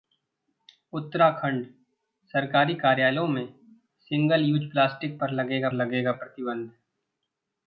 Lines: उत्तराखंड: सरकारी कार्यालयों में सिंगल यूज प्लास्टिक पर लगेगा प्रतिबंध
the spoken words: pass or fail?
fail